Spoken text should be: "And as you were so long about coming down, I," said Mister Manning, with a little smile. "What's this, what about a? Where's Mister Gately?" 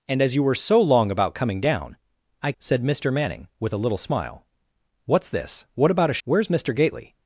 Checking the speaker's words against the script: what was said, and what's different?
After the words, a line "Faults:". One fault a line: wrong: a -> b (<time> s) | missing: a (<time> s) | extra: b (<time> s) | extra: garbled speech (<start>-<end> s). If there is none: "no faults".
"And as you were so long about coming down, I," said Mister Manning, with a little smile. "What's this, what about a? Where's Mister Gately?"
Faults:
no faults